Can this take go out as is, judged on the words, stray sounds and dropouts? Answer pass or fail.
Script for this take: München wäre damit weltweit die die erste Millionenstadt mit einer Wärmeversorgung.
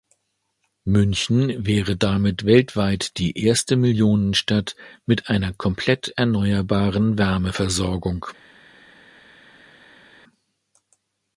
fail